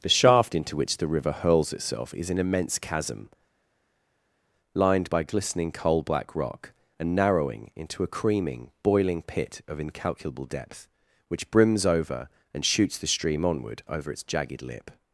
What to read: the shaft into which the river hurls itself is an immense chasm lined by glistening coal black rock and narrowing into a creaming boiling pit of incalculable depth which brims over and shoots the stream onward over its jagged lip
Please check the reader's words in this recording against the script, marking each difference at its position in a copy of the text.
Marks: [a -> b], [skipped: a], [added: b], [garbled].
the shaft into which the river hurls itself is an immense chasm lined by glistening coal black rock and narrowing into a creaming boiling pit of incalculable depth which brims over and shoots the stream onward over its jagged lip